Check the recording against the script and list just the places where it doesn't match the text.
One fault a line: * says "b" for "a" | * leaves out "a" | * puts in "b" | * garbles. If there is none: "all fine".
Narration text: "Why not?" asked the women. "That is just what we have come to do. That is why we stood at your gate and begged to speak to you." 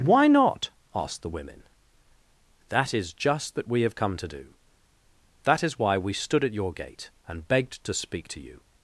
* says "that" for "what"